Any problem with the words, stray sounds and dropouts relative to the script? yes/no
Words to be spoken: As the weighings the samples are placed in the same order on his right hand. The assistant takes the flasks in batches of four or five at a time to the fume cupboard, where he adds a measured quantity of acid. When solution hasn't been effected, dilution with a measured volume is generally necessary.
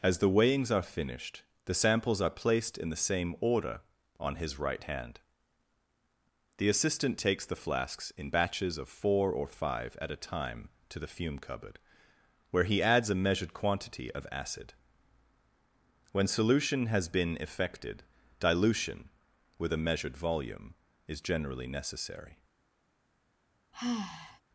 yes